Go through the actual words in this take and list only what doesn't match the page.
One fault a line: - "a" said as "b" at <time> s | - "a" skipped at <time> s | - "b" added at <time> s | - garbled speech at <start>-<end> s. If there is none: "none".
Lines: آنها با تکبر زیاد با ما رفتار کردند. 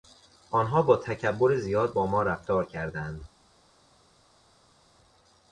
none